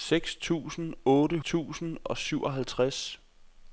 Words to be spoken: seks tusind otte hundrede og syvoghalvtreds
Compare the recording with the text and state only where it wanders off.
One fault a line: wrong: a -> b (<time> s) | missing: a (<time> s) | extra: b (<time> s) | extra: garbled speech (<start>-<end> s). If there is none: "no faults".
wrong: hundrede -> tusind (1.4 s)